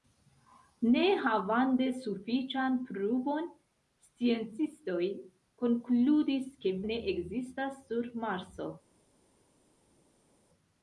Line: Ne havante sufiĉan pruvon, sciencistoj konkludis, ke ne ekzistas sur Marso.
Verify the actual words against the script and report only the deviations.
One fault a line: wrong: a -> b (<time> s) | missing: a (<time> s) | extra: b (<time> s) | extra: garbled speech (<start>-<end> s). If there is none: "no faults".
no faults